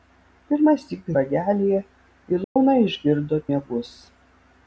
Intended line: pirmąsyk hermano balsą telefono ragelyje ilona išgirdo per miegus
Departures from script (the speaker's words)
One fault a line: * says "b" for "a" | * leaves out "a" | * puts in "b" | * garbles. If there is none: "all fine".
* leaves out "hermano balsą telefono"
* leaves out "per"